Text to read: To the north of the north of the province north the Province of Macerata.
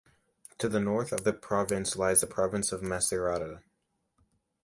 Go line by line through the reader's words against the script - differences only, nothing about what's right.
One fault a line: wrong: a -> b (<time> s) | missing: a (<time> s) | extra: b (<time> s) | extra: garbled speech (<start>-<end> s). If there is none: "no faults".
missing: north of the (1.3 s)
wrong: north -> lies (2.0 s)